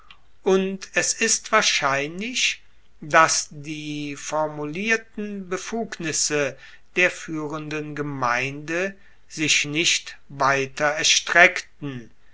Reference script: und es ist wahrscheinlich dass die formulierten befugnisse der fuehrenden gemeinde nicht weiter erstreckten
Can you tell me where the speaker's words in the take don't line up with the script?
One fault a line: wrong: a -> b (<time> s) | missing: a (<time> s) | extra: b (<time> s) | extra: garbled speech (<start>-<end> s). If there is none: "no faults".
extra: sich (9.3 s)